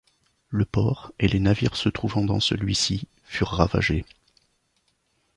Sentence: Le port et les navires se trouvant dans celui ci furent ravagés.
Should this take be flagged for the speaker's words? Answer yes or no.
no